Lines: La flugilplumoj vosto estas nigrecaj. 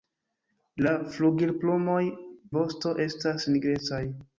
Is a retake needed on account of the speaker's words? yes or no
no